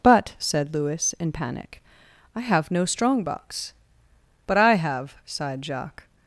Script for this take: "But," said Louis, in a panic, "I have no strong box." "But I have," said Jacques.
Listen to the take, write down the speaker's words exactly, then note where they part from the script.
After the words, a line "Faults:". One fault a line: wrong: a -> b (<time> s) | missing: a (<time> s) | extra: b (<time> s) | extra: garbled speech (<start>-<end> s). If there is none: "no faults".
"But," said Louis, in panic, "I have no strong box." "But I have," sighed Jacques.
Faults:
missing: a (1.3 s)
wrong: said -> sighed (5.3 s)